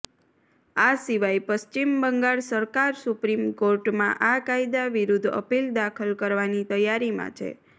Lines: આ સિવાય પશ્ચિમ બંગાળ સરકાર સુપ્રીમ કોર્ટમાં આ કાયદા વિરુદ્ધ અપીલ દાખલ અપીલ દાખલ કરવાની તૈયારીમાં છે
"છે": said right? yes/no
yes